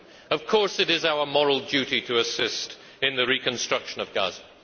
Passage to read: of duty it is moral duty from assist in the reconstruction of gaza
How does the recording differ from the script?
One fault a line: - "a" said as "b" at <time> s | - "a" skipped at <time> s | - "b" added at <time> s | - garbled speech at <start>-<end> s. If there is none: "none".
- "duty" said as "course" at 0.5 s
- "our" added at 1.1 s
- "from" said as "to" at 2.0 s